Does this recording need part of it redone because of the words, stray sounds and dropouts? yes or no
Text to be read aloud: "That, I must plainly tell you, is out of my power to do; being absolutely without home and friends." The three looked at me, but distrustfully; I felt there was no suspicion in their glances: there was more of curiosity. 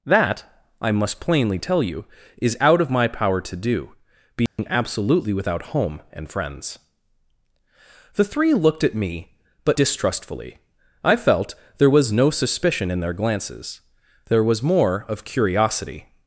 yes